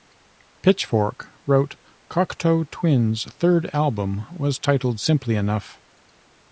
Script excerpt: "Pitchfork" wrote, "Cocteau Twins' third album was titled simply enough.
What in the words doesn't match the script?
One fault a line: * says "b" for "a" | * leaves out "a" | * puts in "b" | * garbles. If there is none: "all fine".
all fine